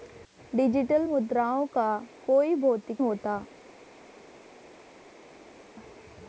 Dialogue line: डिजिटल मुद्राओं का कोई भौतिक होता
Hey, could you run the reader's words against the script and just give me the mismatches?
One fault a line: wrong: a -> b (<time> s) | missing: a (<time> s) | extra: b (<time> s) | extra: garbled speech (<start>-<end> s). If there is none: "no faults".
no faults